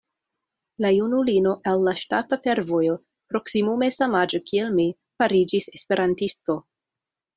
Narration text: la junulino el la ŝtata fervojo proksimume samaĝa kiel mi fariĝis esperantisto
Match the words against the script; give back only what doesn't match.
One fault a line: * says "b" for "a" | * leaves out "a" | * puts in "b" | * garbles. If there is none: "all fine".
all fine